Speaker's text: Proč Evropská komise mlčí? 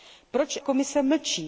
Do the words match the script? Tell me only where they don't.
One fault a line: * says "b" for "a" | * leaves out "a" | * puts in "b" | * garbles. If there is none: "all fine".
* leaves out "Evropská"